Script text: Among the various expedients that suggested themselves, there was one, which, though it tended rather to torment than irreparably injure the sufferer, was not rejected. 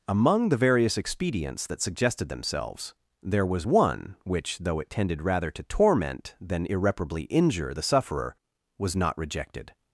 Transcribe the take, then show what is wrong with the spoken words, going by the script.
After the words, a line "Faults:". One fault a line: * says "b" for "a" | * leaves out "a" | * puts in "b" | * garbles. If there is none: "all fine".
Among the various expedients that suggested themselves, there was one, which, though it tended rather to torment than irreparably injure the sufferer, was not rejected.
Faults:
all fine